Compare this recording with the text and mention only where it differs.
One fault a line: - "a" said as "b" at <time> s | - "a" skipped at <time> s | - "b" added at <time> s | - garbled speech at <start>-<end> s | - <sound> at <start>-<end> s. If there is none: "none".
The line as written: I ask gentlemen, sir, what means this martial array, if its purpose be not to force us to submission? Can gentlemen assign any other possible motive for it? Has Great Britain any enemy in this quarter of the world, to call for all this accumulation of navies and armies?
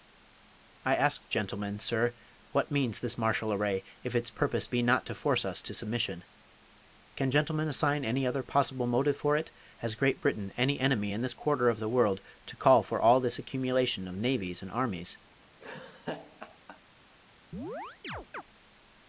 - laugh at 15.6-16.8 s
- chirp at 17.5-18.4 s